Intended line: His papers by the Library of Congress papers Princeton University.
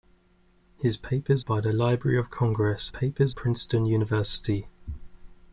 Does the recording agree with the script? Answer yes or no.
yes